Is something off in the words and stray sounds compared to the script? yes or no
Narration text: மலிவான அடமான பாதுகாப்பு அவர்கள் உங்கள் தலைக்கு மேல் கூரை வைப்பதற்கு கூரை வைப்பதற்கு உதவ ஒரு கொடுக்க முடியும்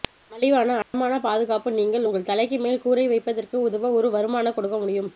yes